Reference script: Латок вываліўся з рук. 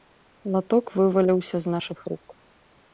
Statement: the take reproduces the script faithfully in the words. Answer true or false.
false